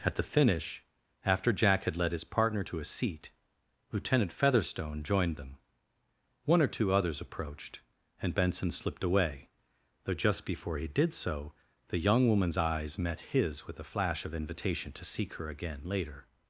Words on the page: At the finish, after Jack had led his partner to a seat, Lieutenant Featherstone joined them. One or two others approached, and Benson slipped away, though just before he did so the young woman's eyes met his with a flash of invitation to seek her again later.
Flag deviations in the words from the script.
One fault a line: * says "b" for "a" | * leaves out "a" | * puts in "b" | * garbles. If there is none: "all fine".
all fine